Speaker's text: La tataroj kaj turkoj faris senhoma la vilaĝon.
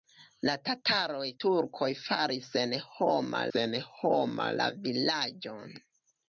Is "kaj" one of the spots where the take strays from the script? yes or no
yes